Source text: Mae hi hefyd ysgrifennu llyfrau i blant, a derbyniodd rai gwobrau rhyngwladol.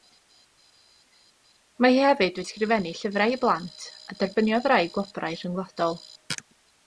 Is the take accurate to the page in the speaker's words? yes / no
yes